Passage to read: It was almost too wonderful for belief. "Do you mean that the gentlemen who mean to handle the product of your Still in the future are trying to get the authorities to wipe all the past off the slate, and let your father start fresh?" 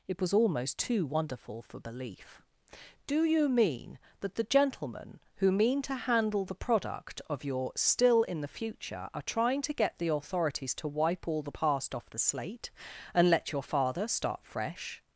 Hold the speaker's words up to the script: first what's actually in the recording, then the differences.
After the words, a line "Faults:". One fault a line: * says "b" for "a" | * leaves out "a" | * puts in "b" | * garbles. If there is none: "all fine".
It was almost too wonderful for belief. "Do you mean that the gentlemen who mean to handle the product of your Still in the future are trying to get the authorities to wipe all the past off the slate, and let your father start fresh?"
Faults:
all fine